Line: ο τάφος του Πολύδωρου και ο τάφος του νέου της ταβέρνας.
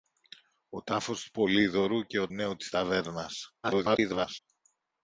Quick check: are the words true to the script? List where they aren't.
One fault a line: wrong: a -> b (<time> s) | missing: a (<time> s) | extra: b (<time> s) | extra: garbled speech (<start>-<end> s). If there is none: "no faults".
missing: τάφος του (2.3 s)
extra: garbled speech (3.6-4.4 s)